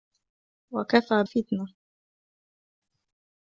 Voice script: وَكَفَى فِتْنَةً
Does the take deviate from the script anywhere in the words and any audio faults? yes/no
no